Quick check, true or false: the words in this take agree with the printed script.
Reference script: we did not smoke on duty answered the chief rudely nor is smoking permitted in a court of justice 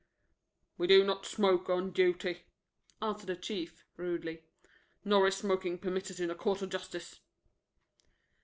false